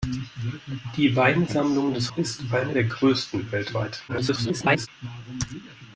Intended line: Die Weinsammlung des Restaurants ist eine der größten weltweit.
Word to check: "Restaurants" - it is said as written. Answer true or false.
false